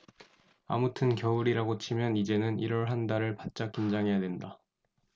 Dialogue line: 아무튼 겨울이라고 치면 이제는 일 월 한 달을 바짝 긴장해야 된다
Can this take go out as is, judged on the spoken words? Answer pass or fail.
pass